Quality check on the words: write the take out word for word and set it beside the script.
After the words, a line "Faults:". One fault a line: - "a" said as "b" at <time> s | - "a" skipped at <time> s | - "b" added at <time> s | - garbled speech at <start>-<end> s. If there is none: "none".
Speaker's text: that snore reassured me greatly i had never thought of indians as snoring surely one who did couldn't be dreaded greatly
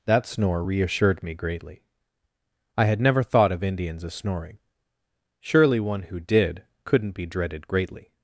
that snore reassured me greatly i had never thought of indians as snoring surely one who did couldn't be dreaded greatly
Faults:
none